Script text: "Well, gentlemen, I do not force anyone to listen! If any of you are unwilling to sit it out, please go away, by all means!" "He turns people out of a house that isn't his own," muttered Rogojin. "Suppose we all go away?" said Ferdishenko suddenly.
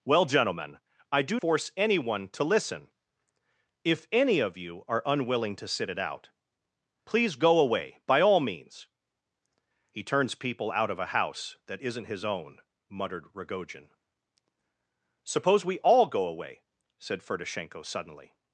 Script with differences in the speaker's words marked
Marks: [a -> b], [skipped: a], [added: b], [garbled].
"Well, gentlemen, I do [skipped: not] force anyone to listen! If any of you are unwilling to sit it out, please go away, by all means!" "He turns people out of a house that isn't his own," muttered Rogojin. "Suppose we all go away?" said Ferdishenko suddenly.